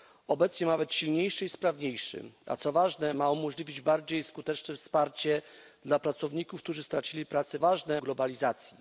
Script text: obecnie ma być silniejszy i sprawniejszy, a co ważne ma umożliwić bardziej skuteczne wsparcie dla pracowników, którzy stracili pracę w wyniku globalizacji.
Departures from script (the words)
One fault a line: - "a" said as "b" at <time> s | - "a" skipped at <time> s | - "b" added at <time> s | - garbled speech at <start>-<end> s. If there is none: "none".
- "wyniku" said as "ważne" at 7.6 s